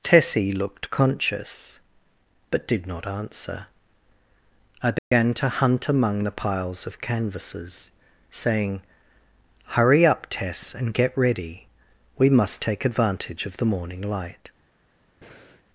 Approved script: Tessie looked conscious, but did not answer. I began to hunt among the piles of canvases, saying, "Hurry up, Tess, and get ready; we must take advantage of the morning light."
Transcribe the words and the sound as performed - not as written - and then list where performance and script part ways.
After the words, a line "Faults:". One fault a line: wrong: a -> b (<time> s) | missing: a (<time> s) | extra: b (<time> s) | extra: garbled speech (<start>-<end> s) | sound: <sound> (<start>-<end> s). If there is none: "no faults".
Tessie looked conscious, but did not answer. I began to hunt among the piles of canvases, saying, "Hurry up, Tess, and get ready; we must take advantage of the morning light."
Faults:
sound: dropout (5.0-5.1 s)
sound: breath (15.2-15.6 s)